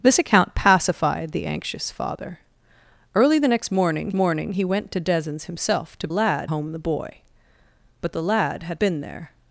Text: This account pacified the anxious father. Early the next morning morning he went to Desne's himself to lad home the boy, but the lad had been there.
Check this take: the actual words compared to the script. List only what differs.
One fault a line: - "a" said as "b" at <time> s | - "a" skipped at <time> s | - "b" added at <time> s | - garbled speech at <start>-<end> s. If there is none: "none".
none